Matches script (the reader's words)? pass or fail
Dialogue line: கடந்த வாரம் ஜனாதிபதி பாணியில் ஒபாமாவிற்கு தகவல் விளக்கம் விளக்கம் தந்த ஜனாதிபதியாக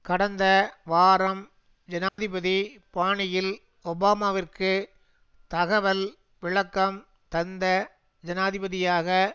fail